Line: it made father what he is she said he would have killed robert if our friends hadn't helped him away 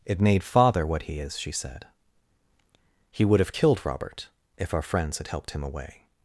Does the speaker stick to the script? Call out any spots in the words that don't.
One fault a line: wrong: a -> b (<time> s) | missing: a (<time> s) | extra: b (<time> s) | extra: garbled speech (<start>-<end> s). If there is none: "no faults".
wrong: hadn't -> had (5.2 s)